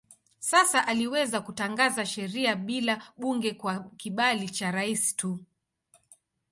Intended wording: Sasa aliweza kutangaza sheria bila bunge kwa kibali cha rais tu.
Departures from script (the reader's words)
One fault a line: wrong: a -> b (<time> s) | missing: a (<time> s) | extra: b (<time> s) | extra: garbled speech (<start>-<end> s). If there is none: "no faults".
no faults